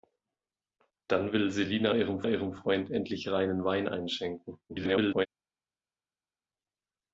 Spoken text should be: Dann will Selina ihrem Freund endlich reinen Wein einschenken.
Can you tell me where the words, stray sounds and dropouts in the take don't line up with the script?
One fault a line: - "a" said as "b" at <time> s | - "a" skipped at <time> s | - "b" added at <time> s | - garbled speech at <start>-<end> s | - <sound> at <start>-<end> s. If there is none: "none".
- "ihrem" added at 2.3 s
- garbled speech at 4.7-5.3 s